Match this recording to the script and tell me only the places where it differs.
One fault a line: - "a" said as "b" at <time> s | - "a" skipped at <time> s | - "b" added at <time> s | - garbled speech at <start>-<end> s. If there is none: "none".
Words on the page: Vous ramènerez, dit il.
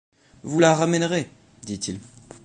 - "la" added at 0.6 s